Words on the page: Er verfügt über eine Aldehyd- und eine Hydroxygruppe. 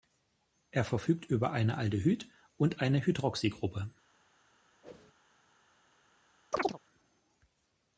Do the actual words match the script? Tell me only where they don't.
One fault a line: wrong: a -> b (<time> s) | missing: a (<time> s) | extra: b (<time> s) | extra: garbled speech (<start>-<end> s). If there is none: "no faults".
no faults